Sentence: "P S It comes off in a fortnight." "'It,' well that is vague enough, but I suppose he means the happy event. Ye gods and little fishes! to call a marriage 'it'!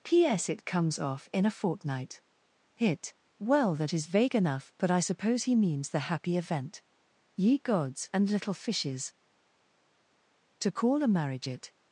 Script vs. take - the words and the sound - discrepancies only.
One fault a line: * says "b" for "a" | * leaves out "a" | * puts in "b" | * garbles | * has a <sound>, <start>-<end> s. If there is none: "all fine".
* says "Hit" for "It"